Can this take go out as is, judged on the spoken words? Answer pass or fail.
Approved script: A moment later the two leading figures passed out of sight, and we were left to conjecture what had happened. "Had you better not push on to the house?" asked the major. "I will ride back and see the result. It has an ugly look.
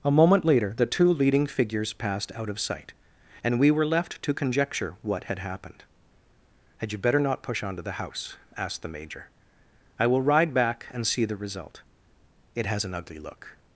pass